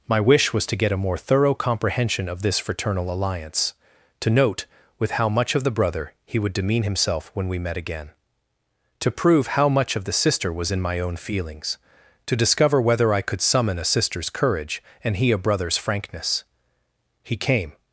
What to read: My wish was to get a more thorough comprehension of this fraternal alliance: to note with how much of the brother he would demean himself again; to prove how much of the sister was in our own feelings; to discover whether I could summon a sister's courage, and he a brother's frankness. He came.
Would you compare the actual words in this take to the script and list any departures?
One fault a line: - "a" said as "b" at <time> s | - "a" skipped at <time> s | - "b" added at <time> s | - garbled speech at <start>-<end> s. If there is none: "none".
- "when we met" added at 7.3 s
- "our" said as "my" at 10.8 s